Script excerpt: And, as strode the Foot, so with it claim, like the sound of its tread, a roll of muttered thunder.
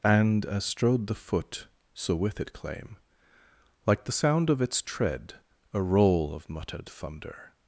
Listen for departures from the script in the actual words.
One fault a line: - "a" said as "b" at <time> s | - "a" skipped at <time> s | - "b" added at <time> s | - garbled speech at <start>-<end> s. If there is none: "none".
none